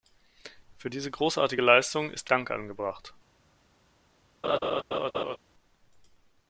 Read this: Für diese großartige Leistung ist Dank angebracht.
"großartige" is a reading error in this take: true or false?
false